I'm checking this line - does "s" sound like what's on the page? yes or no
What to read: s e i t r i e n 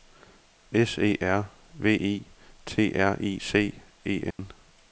yes